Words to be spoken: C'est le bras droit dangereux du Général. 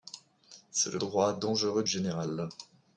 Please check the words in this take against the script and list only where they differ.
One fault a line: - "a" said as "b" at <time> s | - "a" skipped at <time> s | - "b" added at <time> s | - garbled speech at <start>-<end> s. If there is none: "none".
- "bras" skipped at 1.0 s
- "du" skipped at 1.8 s